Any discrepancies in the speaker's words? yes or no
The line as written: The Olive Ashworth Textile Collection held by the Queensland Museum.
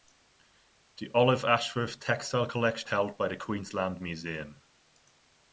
no